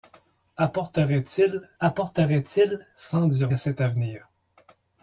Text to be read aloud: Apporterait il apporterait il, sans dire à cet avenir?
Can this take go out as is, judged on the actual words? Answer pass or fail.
pass